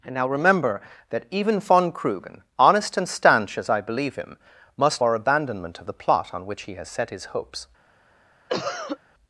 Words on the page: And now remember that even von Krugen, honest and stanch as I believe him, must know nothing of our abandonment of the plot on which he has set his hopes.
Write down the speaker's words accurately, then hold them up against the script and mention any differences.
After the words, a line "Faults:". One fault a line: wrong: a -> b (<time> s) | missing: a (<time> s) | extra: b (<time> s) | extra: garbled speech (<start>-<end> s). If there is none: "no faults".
And now remember that even von Krugen, honest and stanch as I believe him, must our abandonment of the plot on which he has set his hopes.
Faults:
missing: know nothing of (5.0 s)